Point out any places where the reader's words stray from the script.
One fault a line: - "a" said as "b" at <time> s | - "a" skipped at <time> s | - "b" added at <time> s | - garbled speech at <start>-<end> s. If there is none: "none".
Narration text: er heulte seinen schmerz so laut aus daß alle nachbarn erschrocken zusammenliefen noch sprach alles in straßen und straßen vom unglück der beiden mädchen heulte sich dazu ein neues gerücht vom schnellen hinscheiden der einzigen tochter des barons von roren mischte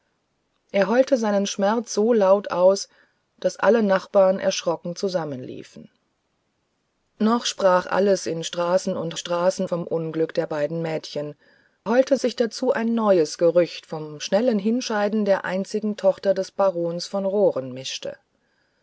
none